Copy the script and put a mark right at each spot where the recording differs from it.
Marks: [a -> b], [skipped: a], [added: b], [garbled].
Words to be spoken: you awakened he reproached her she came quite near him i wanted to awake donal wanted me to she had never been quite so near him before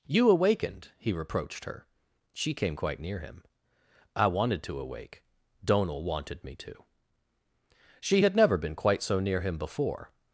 you awakened he reproached her she came quite near him i wanted to awake donal wanted me to she had never been quite so near him before